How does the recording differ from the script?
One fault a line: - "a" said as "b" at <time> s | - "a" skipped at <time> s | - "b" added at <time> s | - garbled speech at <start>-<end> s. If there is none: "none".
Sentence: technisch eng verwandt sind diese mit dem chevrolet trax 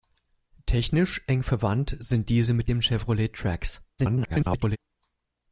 - garbled speech at 4.0-4.8 s